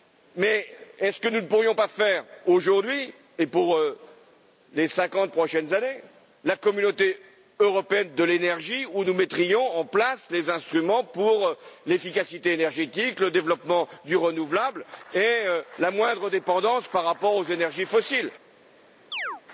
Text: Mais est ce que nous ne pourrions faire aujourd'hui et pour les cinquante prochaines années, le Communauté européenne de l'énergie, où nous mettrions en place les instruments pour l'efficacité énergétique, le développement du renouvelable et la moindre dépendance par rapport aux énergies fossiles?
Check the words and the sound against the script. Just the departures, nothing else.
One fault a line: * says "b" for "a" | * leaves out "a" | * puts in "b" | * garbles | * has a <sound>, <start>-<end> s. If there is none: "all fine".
* puts in "pas"
* says "la" for "le"
* has a chirp, 19.1-19.4 s